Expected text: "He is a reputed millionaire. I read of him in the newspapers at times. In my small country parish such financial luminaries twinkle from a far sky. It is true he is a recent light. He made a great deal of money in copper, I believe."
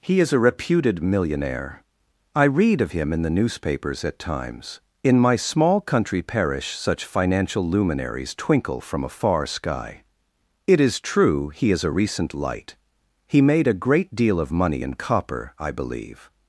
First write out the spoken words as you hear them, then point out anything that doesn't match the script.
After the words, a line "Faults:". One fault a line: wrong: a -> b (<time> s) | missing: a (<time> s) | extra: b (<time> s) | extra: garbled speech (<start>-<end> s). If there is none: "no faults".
"He is a reputed millionaire. I read of him in the newspapers at times. In my small country parish such financial luminaries twinkle from a far sky. It is true he is a recent light. He made a great deal of money in copper, I believe."
Faults:
no faults